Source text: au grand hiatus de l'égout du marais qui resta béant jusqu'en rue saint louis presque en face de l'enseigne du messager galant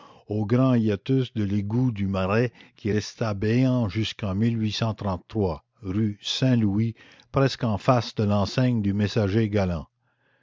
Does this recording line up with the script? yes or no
yes